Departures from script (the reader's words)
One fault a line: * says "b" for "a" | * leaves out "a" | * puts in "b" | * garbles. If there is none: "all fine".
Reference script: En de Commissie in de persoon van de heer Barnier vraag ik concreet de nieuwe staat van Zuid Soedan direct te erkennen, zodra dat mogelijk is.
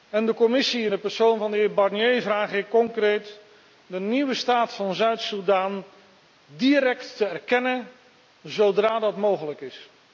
all fine